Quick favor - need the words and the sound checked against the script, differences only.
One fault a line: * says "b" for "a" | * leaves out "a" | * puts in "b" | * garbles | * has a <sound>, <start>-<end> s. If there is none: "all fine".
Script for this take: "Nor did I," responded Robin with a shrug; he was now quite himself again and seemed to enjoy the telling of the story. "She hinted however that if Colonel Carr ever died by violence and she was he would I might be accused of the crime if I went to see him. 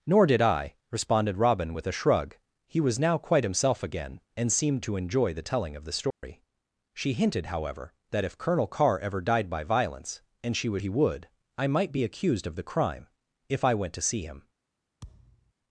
* has a dropout, 6.1-6.2 s
* has a thud, 15.0-15.5 s